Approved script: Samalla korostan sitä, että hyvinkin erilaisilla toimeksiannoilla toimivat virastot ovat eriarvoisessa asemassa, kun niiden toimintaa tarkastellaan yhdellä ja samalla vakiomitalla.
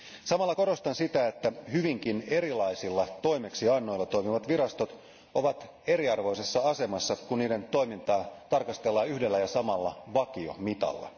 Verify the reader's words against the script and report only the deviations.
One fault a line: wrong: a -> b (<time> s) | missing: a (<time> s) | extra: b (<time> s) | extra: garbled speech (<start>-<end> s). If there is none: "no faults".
no faults